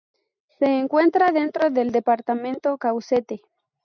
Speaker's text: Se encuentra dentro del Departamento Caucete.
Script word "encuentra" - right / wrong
right